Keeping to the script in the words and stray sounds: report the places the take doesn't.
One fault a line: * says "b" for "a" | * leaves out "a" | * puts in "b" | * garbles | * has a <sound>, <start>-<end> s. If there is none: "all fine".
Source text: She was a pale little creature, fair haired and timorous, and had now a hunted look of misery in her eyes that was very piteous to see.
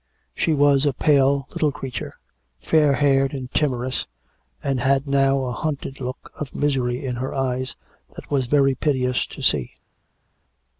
all fine